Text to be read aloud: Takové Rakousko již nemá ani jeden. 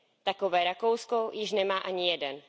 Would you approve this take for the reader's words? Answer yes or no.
yes